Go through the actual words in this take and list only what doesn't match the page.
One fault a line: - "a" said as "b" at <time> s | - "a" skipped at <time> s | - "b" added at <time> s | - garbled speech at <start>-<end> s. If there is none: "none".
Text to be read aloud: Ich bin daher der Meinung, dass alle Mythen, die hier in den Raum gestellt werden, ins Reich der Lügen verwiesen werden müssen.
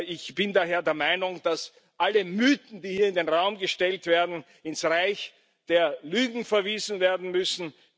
none